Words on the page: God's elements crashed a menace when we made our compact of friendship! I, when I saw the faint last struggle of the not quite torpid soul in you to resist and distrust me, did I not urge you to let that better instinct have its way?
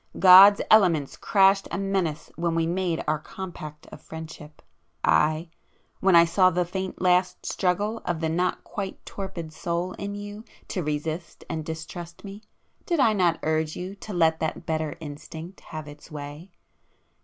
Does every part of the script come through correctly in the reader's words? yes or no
yes